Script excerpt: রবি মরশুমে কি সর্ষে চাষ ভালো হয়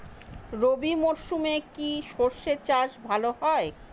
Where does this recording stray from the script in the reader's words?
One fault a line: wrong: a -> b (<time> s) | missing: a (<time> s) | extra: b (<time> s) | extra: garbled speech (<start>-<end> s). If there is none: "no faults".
no faults